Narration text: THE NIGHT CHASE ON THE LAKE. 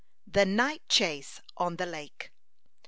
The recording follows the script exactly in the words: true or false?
true